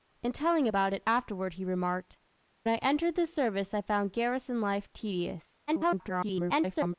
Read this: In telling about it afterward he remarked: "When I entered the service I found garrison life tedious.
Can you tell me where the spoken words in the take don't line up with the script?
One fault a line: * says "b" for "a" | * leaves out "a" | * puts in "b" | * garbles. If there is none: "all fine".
* leaves out "When"
* garbles